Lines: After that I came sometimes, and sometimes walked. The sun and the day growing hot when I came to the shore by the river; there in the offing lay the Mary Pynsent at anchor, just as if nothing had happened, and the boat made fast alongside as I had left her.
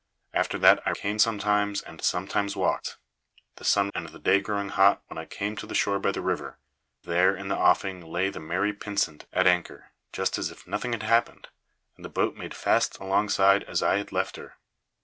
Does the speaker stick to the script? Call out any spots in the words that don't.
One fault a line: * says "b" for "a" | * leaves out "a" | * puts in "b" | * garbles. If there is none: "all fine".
all fine